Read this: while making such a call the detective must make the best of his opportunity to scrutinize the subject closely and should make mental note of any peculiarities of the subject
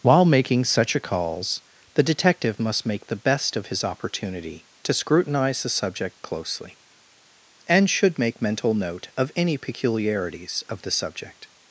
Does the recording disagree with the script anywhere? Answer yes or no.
yes